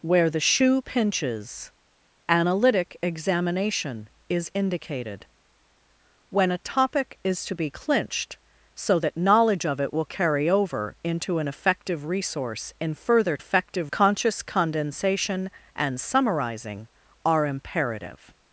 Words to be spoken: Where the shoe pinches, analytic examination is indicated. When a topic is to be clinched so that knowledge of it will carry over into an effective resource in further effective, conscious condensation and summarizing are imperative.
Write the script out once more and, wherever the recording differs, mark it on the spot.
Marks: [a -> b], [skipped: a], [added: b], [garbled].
Where the shoe pinches, analytic examination is indicated. When a topic is to be clinched so that knowledge of it will carry over into an effective resource in further effective, conscious condensation and summarizing are imperative.